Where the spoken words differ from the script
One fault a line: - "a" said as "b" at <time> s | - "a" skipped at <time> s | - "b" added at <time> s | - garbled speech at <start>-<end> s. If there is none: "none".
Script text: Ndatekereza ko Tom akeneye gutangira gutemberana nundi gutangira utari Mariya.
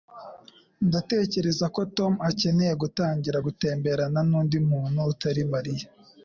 - "gutangira" said as "muntu" at 4.7 s